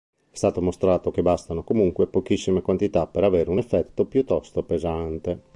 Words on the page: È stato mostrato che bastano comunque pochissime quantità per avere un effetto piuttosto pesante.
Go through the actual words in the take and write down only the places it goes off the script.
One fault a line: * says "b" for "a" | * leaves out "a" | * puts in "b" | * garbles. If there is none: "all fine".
all fine